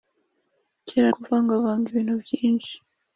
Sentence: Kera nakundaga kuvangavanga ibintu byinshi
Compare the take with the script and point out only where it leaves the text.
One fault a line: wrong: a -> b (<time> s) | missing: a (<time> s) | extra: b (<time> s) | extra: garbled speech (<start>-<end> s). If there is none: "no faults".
missing: nakundaga (1.1 s)